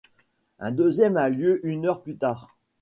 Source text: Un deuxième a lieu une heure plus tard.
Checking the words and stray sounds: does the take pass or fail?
pass